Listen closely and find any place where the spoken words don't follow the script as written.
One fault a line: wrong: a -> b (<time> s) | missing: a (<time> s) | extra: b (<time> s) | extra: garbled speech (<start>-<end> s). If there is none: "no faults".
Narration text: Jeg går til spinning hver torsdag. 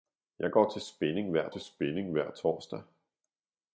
extra: til spinning hver (1.5 s)